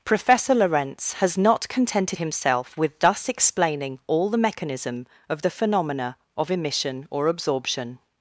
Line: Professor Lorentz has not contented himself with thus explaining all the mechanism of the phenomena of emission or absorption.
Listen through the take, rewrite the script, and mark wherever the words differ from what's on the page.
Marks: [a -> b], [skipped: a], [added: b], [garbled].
Professor Lorentz has not contented himself with thus explaining all the mechanism of the phenomena of emission or absorption.